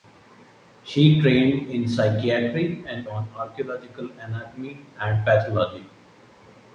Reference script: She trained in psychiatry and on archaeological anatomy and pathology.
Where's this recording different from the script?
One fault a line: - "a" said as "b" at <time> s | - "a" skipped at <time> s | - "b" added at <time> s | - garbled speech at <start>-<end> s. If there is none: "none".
none